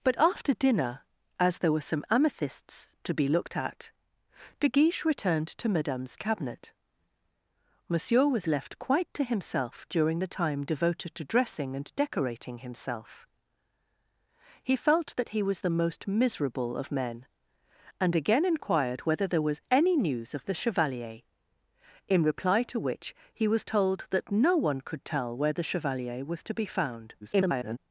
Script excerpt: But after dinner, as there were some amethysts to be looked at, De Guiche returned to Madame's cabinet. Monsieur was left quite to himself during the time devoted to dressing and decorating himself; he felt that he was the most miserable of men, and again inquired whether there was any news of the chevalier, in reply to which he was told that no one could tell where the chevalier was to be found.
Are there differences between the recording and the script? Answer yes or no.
yes